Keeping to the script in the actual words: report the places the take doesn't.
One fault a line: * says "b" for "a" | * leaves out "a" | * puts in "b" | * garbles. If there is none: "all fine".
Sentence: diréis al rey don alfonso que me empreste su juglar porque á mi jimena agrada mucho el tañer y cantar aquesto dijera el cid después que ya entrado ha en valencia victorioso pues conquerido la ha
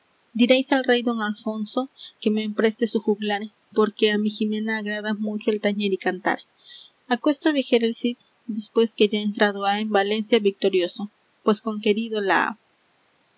all fine